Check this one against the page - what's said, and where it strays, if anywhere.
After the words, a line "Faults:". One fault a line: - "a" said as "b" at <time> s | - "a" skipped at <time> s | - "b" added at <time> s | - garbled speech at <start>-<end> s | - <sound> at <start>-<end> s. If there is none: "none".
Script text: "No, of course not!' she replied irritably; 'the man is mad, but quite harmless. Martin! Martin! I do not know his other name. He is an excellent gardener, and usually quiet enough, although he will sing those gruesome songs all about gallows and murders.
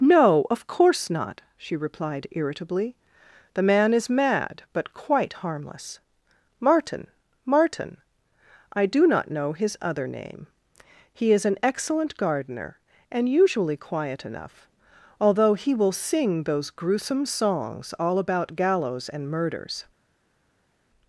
"No, of course not!' she replied irritably; 'the man is mad, but quite harmless. Martin! Martin! I do not know his other name. He is an excellent gardener, and usually quiet enough, although he will sing those gruesome songs all about gallows and murders.
Faults:
none